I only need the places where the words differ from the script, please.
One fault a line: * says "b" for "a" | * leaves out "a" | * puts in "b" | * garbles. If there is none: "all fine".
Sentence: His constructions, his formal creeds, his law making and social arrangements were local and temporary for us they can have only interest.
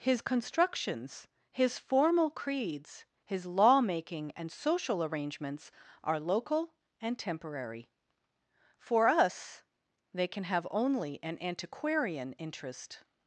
* says "are" for "were"
* puts in "an antiquarian"